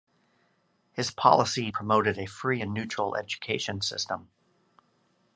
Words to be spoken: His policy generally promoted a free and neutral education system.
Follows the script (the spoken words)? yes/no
no